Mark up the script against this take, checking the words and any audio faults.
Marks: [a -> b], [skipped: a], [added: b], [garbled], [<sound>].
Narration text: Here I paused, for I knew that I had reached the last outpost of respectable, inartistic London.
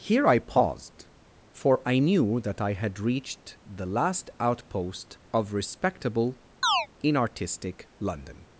Here I paused, for I knew that I had reached the last outpost of respectable, [chirp] inartistic London.